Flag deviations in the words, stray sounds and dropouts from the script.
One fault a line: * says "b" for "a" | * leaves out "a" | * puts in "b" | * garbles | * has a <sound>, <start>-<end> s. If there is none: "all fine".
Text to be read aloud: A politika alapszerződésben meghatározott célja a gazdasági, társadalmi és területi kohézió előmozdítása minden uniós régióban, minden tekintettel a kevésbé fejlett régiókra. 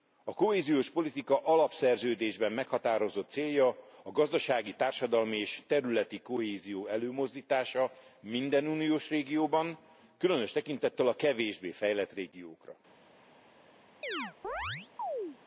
* puts in "kohéziós"
* says "különös" for "minden"
* has a chirp, 14.0-15.4 s